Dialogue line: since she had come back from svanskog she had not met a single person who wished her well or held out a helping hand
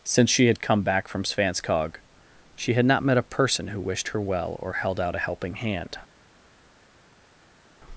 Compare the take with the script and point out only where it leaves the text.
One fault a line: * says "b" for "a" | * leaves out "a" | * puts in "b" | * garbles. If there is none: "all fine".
* leaves out "single"